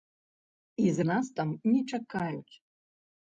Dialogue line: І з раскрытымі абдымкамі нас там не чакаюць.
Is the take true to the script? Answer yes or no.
no